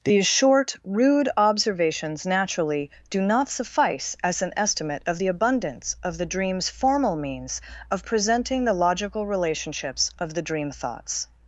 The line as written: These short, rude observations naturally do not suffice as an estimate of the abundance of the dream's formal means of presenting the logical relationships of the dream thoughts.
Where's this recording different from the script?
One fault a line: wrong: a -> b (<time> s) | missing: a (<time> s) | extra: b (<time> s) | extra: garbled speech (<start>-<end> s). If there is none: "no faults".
no faults